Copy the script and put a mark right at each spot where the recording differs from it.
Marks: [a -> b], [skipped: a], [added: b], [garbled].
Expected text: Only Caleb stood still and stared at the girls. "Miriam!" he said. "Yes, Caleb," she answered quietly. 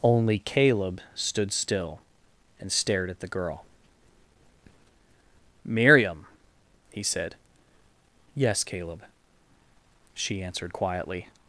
Only Caleb stood still and stared at the [girls. -> girl] "Miriam!" he said. "Yes, Caleb," she answered quietly.